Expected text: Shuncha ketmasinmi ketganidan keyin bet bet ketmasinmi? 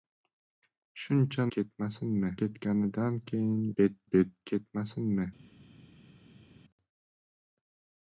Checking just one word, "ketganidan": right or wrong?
right